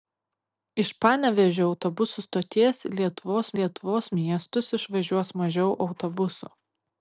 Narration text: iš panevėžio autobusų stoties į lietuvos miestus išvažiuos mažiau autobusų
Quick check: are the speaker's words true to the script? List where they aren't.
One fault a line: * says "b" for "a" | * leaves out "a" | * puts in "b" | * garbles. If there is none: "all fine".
* puts in "lietuvos"